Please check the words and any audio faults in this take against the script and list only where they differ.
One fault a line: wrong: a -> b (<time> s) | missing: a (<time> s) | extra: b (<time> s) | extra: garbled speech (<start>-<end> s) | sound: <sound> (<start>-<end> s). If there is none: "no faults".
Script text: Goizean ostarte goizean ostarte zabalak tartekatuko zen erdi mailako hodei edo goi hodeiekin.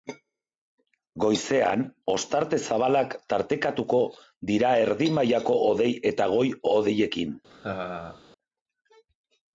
missing: goizean ostarte (2.6 s)
wrong: zen -> dira (4.5 s)
wrong: edo -> eta (6.2 s)
sound: laugh (7.5-8.2 s)